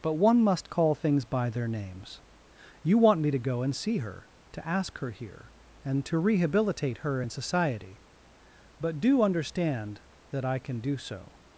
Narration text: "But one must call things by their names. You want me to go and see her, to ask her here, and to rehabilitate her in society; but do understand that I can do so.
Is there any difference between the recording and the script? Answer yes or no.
no